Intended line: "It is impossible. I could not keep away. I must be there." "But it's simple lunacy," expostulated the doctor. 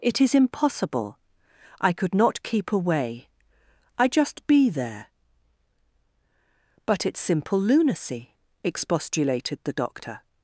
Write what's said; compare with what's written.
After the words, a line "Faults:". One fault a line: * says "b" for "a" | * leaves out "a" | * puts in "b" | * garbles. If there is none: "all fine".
"It is impossible. I could not keep away. I just be there." "But it's simple lunacy," expostulated the doctor.
Faults:
* says "just" for "must"